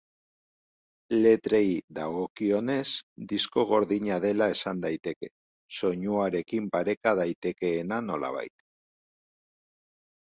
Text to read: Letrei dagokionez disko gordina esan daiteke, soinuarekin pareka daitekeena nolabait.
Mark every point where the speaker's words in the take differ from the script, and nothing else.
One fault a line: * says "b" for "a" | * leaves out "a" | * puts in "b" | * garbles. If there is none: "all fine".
* puts in "dela"